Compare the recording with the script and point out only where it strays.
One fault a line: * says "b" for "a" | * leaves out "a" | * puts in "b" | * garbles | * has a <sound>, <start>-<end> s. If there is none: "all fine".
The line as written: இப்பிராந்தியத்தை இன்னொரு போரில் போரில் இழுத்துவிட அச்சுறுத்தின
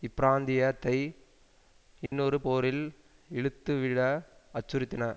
* has a dropout, 2.1-2.1 s
* leaves out "போரில்"